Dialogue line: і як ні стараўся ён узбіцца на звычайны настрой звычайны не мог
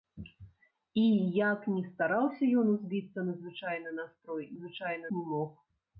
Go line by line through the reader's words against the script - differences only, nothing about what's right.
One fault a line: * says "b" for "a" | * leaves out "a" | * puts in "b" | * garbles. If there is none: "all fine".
all fine